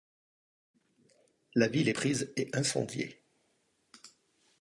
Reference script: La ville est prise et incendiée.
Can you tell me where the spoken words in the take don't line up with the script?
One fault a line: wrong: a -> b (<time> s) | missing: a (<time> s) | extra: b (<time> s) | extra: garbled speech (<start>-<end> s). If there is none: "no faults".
no faults